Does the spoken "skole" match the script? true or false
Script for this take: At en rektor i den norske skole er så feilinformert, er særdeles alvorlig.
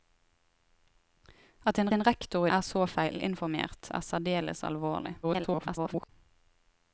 false